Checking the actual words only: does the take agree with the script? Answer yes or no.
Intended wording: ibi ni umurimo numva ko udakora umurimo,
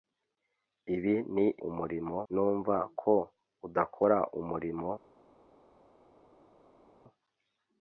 yes